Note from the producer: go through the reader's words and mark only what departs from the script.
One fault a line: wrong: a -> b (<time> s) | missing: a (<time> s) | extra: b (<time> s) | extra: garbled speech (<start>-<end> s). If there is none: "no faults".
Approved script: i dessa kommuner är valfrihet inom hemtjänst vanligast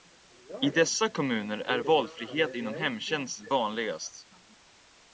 no faults